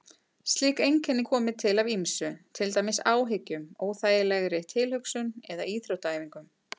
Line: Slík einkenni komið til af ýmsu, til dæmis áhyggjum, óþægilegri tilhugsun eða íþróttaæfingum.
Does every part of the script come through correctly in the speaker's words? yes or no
yes